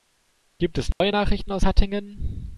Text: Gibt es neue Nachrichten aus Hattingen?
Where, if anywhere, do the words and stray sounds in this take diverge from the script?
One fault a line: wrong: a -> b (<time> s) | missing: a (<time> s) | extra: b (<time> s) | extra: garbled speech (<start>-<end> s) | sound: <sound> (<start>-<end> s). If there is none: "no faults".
sound: dropout (0.9-1.0 s)